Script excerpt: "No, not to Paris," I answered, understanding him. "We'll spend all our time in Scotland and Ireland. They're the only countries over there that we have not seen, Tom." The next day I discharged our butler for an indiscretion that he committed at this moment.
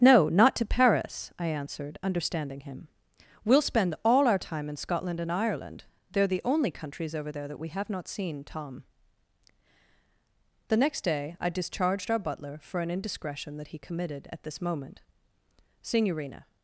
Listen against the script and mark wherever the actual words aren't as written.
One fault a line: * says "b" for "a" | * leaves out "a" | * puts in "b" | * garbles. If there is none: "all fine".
* puts in "Signorina"